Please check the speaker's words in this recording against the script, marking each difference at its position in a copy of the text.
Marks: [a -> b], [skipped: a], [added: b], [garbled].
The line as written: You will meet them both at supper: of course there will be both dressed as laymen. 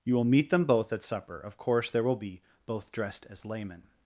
You will meet them both at supper: of course there will be both dressed as laymen.